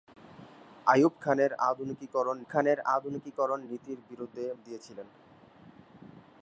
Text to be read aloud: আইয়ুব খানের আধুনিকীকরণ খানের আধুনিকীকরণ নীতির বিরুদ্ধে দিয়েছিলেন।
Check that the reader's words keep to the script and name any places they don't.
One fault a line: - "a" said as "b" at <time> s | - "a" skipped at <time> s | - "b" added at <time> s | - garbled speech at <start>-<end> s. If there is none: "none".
none